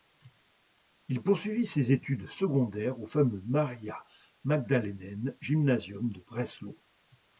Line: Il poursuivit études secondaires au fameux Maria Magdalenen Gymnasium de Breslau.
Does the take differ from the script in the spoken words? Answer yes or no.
yes